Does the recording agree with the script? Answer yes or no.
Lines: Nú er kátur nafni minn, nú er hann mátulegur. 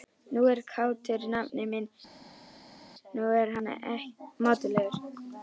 yes